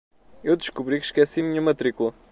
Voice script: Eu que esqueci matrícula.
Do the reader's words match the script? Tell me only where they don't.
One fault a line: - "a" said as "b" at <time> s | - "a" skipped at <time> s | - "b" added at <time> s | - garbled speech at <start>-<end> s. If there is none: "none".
- "descobri" added at 0.6 s
- "minha" added at 1.4 s